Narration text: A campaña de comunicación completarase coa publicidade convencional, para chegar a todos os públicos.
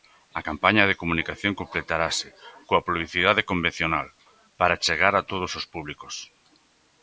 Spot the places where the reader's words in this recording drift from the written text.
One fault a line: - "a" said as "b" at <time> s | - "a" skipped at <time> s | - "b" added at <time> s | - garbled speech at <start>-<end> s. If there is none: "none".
none